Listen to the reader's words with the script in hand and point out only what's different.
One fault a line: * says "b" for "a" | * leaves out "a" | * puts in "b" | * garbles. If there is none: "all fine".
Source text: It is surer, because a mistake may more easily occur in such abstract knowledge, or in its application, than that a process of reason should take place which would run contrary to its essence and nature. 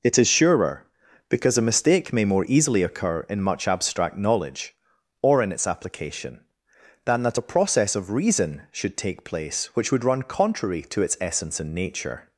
* says "much" for "such"